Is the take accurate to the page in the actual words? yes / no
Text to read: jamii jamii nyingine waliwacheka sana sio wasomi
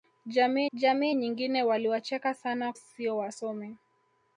yes